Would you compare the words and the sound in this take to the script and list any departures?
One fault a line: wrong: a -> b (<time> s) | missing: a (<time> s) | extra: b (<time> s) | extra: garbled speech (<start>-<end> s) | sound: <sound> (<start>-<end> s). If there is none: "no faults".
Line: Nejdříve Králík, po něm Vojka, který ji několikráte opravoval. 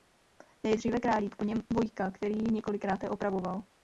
no faults